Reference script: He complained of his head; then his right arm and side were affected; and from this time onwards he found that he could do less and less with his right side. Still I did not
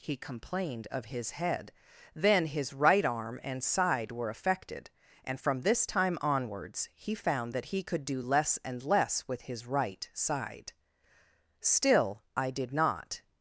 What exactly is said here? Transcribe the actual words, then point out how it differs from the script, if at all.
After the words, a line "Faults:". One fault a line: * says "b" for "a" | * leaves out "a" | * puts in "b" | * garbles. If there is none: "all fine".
He complained of his head; then his right arm and side were affected; and from this time onwards he found that he could do less and less with his right side. Still I did not
Faults:
all fine